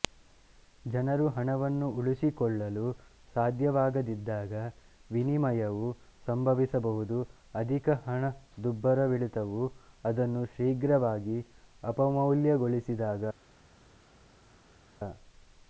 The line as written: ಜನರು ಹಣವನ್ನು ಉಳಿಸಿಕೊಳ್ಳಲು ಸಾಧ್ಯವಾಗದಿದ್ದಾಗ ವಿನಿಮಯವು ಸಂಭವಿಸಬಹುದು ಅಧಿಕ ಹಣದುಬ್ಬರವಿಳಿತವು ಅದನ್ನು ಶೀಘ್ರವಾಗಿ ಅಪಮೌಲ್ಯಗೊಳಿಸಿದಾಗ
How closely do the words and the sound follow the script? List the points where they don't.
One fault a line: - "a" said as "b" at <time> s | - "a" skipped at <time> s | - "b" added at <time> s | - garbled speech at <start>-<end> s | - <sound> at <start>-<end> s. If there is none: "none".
none